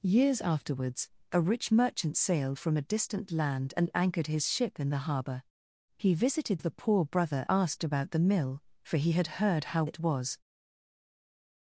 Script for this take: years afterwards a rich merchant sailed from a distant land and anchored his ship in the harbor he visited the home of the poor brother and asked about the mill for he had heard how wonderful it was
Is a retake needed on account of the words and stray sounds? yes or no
yes